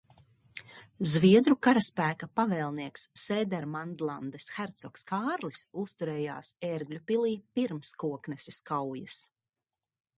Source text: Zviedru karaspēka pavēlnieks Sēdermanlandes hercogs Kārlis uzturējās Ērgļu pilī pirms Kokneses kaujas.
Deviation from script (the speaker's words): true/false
false